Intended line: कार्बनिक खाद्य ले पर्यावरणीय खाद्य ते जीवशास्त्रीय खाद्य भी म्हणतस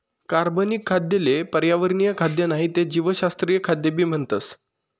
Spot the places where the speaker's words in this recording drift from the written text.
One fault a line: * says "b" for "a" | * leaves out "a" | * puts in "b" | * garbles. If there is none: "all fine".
* puts in "नाही"